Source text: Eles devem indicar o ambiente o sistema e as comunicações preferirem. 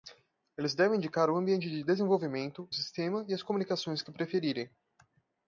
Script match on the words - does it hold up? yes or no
no